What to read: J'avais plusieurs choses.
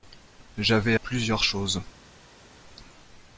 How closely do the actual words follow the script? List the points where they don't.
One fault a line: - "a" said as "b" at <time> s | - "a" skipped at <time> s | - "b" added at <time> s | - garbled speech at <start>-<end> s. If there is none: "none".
none